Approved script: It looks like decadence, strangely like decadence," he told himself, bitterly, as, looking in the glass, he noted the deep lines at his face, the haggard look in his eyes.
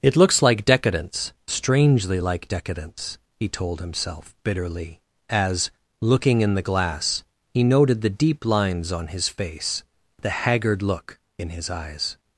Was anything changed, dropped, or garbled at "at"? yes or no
yes